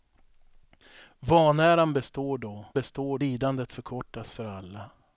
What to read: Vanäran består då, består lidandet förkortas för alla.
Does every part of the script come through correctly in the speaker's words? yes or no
yes